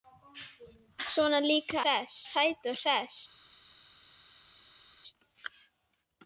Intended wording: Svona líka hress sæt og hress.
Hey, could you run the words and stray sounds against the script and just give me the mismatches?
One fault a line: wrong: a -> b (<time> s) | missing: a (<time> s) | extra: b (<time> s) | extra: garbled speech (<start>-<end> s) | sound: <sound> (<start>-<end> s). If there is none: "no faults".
no faults